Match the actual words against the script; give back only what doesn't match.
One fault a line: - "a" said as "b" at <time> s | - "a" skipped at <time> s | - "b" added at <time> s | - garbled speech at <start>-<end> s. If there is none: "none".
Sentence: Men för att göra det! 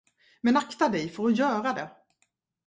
- "akta dig" added at 0.5 s